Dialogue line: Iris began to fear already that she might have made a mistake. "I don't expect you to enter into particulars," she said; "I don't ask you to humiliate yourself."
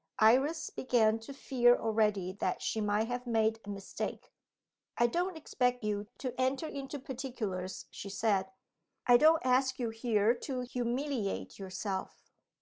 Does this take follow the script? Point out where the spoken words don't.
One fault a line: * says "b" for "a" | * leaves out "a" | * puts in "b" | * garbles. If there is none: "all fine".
* puts in "here"